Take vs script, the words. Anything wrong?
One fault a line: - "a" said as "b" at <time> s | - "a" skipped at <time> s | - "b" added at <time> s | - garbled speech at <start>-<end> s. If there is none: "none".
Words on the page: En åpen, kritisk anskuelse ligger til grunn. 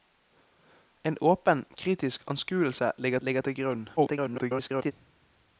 - "ligger" added at 3.2 s
- garbled speech at 4.0-4.9 s